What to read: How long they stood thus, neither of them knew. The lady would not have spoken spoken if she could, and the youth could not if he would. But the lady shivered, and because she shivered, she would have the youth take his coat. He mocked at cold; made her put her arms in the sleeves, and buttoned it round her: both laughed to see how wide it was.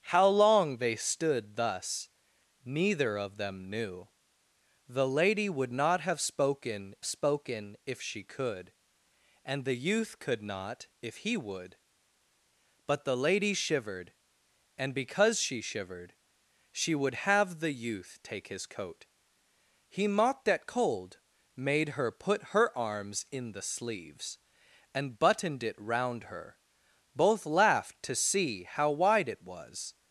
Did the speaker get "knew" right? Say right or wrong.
right